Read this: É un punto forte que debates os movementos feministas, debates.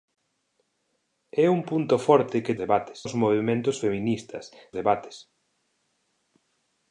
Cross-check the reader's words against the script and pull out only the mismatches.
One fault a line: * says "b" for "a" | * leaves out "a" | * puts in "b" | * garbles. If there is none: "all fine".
all fine